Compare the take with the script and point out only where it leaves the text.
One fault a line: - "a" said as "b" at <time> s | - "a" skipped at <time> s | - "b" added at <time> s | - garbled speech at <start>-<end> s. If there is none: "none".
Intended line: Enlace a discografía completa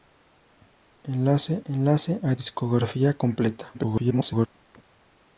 - "enlace" added at 1.6 s
- garbled speech at 3.7-4.5 s